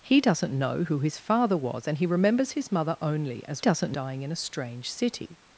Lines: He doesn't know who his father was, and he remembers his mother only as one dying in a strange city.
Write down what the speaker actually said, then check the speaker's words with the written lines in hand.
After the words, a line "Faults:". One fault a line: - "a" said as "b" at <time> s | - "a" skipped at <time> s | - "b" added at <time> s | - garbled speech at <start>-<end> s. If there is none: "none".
He doesn't know who his father was, and he remembers his mother only as doesn't dying in a strange city.
Faults:
- "one" said as "doesn't" at 3.6 s